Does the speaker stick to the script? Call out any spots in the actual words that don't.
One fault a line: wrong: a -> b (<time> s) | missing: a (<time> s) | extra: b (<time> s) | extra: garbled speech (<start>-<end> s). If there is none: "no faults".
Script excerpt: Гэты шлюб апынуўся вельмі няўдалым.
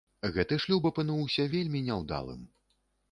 no faults